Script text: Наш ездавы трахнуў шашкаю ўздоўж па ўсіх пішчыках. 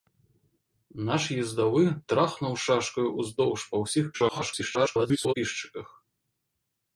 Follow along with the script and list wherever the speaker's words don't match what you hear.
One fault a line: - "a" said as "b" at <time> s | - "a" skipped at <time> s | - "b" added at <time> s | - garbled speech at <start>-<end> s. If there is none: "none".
- garbled speech at 4.1-5.3 s